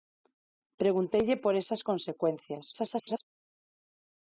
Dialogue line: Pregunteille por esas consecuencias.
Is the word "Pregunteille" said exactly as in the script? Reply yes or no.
yes